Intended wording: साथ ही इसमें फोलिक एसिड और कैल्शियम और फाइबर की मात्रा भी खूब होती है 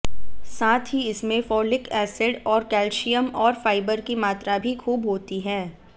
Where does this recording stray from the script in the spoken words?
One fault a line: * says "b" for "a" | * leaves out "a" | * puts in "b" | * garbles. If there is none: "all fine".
all fine